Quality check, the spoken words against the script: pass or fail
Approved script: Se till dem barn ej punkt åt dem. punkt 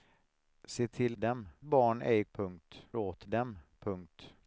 pass